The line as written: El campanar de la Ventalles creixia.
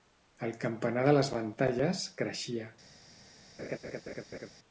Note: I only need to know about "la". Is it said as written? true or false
false